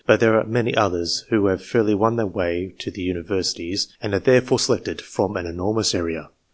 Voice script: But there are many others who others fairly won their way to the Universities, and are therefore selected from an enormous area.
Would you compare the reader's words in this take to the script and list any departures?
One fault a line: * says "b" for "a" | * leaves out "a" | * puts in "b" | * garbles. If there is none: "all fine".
* says "have" for "others"